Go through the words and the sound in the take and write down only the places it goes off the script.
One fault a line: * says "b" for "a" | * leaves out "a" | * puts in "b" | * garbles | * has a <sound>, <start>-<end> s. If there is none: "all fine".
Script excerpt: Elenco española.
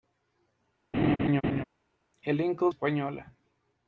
* has a laugh, 0.9-1.6 s